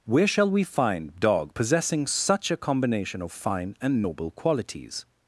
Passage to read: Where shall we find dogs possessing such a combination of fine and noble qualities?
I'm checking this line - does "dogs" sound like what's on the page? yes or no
no